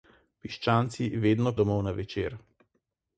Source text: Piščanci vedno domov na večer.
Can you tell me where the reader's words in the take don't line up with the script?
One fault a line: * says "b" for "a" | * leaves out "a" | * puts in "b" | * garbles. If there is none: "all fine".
all fine